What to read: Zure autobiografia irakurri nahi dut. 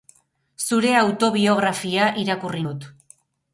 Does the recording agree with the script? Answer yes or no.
no